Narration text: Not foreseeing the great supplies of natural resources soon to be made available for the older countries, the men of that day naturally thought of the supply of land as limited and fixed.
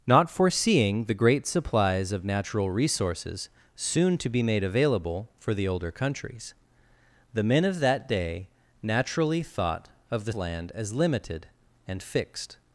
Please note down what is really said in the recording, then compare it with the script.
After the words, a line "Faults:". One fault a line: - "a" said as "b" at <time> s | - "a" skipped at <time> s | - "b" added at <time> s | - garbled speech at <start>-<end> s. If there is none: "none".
Not foreseeing the great supplies of natural resources soon to be made available for the older countries, the men of that day naturally thought of the land as limited and fixed.
Faults:
- "supply of" skipped at 10.3 s